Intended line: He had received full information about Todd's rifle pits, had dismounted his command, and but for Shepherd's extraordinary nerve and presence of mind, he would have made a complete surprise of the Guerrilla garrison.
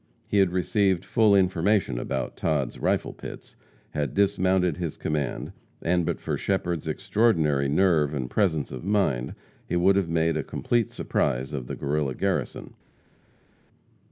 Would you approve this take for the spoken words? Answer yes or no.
yes